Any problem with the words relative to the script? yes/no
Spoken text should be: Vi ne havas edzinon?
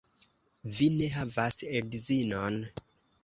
no